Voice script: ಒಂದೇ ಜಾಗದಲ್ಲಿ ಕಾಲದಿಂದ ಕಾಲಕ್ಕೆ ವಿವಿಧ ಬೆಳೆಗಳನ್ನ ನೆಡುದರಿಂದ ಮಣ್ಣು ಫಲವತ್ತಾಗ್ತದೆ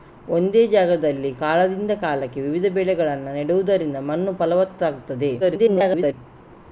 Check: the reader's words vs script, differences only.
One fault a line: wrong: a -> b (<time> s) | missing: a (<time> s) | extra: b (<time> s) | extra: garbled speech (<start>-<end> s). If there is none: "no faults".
extra: garbled speech (5.4-6.1 s)